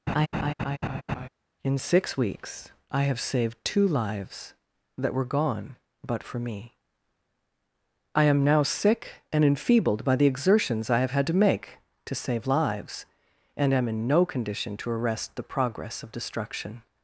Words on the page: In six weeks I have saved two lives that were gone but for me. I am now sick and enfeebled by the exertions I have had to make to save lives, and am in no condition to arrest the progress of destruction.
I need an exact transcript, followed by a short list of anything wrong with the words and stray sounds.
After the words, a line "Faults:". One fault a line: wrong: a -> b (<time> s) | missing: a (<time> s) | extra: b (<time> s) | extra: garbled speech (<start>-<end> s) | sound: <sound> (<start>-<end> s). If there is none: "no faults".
In six weeks I have saved two lives that were gone but for me. I am now sick and enfeebled by the exertions I have had to make to save lives, and am in no condition to arrest the progress of destruction.
Faults:
sound: laugh (0.1-1.3 s)